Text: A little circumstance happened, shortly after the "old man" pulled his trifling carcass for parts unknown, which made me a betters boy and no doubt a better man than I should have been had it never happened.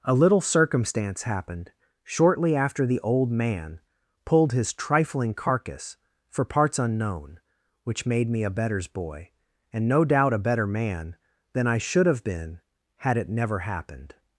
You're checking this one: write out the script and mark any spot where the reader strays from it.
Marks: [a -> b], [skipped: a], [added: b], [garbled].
A little circumstance happened, shortly after the "old man" pulled his trifling carcass for parts unknown, which made me a betters boy and no doubt a better man than I should have been had it never happened.